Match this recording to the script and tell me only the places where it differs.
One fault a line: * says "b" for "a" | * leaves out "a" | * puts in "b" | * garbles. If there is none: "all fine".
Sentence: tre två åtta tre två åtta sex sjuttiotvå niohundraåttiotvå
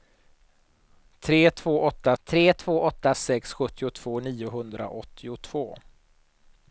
all fine